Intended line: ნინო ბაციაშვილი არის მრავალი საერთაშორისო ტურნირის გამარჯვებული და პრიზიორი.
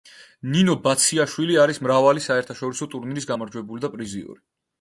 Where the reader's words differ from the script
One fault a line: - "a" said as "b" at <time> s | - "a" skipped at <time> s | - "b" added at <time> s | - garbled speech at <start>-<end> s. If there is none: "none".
none